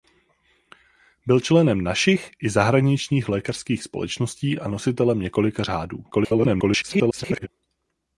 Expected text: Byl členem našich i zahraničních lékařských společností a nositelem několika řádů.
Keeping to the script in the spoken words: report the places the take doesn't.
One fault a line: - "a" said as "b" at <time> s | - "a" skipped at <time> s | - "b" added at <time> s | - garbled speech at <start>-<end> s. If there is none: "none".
- garbled speech at 6.1-7.5 s